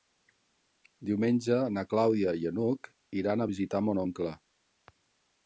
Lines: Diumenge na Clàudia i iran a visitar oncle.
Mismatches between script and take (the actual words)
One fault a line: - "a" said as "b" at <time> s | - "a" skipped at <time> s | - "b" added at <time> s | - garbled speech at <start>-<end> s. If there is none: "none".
- "n'Hug" added at 2.6 s
- "mon" added at 3.9 s